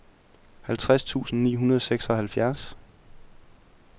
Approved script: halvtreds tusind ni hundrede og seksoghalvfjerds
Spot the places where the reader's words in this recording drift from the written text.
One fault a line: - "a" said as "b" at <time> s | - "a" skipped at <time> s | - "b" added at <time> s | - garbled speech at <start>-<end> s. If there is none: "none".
none